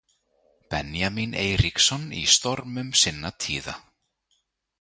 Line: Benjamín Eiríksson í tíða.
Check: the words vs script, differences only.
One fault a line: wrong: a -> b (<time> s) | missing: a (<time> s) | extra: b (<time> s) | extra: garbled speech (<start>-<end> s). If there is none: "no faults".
extra: stormum sinna (2.4 s)